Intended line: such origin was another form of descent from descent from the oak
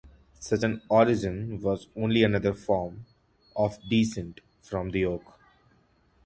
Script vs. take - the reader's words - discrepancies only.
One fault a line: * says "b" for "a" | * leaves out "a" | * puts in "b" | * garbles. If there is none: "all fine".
* puts in "an"
* puts in "only"
* leaves out "descent from"